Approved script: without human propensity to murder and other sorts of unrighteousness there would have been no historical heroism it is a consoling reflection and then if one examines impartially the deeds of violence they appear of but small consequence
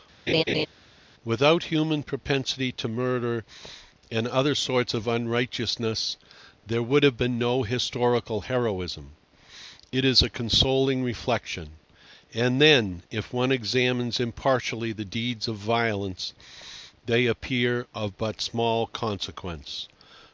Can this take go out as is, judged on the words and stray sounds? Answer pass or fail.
fail